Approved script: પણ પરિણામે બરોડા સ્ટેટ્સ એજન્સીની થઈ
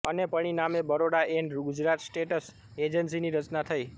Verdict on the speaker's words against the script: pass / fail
fail